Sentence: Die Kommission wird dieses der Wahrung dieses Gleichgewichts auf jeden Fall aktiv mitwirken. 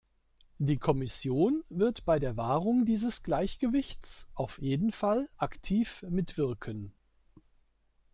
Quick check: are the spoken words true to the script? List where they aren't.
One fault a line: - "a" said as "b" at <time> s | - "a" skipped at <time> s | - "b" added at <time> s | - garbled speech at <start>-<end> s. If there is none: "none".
- "dieses" said as "bei" at 2.0 s